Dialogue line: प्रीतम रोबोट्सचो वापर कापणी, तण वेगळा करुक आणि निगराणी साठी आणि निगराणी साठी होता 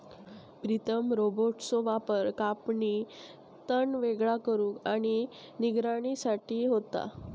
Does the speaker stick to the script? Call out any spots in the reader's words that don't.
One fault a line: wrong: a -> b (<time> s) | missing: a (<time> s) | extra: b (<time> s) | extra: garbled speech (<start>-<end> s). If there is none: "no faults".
missing: आणि निगराणी साठी (6.7 s)